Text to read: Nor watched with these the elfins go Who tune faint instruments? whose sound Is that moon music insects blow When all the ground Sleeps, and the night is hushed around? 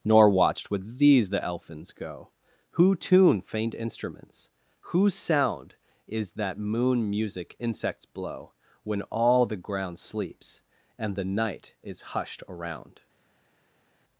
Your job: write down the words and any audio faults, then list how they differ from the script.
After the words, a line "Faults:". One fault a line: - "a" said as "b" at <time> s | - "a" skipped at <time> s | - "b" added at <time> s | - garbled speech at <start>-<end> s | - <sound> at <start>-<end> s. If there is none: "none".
Nor watched with these the elfins go Who tune faint instruments? whose sound Is that moon music insects blow When all the ground Sleeps, and the night is hushed around?
Faults:
none